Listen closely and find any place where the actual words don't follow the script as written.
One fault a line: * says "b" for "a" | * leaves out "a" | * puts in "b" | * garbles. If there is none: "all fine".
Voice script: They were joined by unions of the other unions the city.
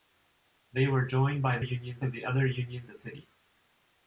all fine